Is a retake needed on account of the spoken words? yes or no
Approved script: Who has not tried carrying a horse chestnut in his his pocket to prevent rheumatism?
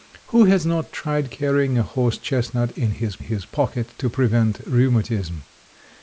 no